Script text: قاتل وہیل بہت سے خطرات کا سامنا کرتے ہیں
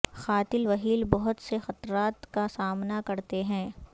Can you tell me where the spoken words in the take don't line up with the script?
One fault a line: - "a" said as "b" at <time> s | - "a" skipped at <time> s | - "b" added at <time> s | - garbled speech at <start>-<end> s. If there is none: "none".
none